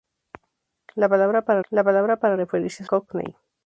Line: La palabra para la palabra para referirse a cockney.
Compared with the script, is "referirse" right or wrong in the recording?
right